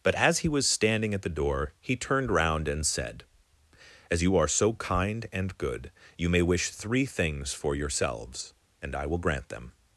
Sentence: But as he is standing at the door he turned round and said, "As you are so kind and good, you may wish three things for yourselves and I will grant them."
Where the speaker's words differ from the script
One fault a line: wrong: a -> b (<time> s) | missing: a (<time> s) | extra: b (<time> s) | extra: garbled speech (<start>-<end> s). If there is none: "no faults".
wrong: is -> was (0.5 s)